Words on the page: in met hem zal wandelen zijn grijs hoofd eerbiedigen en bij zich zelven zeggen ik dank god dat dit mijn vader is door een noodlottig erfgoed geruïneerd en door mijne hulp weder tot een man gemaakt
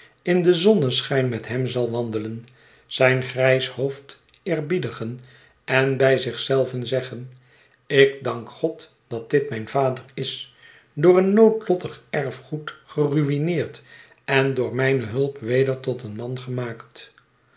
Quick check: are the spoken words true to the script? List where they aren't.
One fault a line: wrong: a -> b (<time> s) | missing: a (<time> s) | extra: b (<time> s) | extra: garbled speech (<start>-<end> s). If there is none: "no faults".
extra: den zonneschijn (0.4 s)